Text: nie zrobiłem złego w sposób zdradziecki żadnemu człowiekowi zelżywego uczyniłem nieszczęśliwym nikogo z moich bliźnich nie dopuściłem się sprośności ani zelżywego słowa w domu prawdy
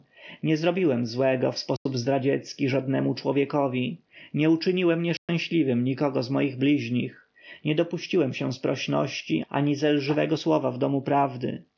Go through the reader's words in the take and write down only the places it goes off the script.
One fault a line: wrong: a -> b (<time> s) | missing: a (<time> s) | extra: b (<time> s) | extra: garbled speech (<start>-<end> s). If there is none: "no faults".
wrong: zelżywego -> nie (4.3 s)